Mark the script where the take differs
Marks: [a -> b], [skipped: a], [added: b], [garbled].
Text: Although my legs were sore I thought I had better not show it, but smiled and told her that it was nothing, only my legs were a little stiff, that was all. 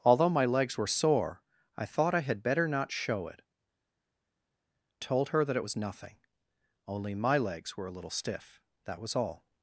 Although my legs were sore I thought I had better not show it, [skipped: but smiled and] told her that it was nothing, only my legs were a little stiff, that was all.